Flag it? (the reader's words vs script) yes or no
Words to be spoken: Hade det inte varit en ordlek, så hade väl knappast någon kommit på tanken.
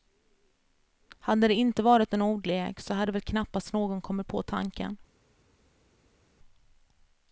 no